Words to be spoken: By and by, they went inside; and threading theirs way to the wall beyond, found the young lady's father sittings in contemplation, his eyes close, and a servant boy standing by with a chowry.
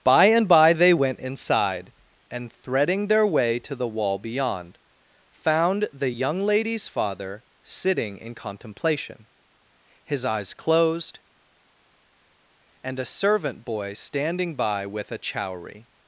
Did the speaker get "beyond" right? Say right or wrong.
right